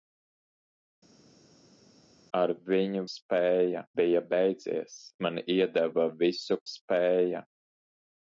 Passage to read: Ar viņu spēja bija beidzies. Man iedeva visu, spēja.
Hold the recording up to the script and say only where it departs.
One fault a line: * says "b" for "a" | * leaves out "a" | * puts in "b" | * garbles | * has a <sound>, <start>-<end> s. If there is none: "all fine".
all fine